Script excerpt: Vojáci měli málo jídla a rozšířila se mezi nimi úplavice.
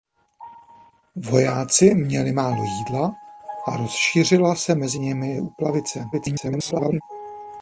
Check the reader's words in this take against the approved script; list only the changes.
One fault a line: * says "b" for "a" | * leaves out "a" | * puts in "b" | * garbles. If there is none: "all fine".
* garbles